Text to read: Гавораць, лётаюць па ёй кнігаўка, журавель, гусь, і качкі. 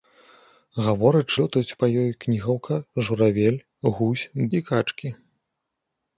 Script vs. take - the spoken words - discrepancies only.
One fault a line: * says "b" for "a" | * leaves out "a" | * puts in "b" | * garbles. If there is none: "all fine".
all fine